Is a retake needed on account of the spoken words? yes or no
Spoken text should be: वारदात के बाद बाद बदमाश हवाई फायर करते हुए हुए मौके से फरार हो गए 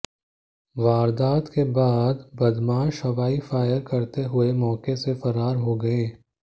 yes